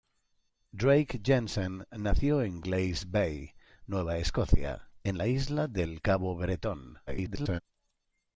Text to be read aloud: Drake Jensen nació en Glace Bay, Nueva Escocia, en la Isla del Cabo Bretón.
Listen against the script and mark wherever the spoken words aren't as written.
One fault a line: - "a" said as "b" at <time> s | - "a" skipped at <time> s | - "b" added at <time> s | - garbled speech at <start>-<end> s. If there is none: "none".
- garbled speech at 7.1-7.6 s